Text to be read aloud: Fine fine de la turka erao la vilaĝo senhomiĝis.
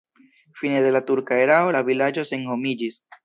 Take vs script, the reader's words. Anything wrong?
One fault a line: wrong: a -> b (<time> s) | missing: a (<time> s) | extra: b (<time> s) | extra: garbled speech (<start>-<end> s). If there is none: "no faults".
missing: fine (0.8 s)